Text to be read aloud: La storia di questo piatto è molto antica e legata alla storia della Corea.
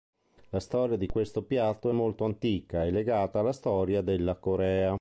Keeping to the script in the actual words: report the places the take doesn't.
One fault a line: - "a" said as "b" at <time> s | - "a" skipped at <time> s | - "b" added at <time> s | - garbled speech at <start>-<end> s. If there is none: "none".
none